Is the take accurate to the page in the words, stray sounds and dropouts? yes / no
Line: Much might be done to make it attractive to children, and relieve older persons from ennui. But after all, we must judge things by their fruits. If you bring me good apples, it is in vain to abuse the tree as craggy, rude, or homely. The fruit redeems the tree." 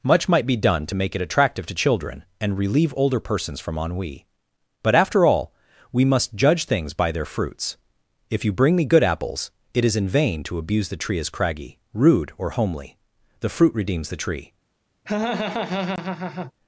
no